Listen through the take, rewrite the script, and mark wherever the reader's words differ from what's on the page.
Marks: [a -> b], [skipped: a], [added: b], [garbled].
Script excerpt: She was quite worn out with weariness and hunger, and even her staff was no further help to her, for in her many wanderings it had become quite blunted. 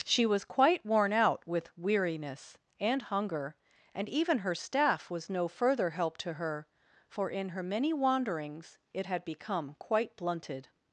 She was quite worn out with weariness and hunger, and even her staff was no further help to her, for in her many wanderings it had become quite blunted.